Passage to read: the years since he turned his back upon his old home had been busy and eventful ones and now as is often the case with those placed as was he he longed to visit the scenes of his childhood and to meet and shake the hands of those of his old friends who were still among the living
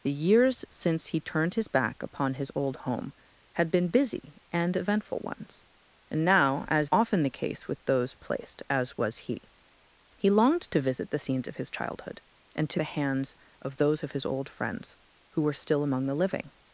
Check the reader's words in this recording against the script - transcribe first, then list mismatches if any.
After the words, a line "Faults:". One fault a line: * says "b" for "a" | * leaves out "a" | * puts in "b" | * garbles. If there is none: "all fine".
the years since he turned his back upon his old home had been busy and eventful ones and now as often the case with those placed as was he he longed to visit the scenes of his childhood and to the hands of those of his old friends who were still among the living
Faults:
* leaves out "is"
* leaves out "meet and shake"